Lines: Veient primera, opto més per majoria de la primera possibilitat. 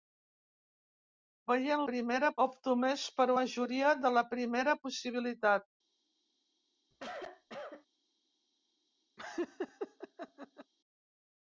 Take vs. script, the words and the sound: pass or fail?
fail